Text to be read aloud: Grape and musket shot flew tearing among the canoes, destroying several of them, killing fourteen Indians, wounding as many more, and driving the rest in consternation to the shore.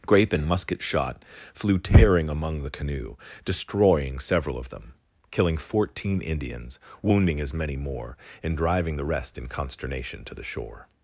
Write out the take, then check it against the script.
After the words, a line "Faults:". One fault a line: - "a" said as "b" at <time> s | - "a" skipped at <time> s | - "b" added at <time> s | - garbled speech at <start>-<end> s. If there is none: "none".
Grape and musket shot flew tearing among the canoe, destroying several of them, killing fourteen Indians, wounding as many more, and driving the rest in consternation to the shore.
Faults:
- "canoes" said as "canoe" at 2.7 s